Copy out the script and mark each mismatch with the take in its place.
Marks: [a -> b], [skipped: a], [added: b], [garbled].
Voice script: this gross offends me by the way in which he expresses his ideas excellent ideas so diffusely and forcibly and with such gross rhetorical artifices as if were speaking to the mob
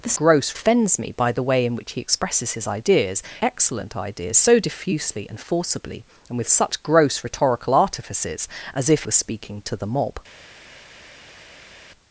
this gross offends me by the way in which he expresses his ideas excellent ideas so diffusely and forcibly and with such gross rhetorical artifices as if were speaking to the mob